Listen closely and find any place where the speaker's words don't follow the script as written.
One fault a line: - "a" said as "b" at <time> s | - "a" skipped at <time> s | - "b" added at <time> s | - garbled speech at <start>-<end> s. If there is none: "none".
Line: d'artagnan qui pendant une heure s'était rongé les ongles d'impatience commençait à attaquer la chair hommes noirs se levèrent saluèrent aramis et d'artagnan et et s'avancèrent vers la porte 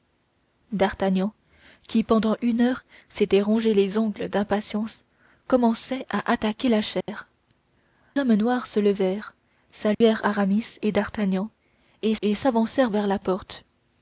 none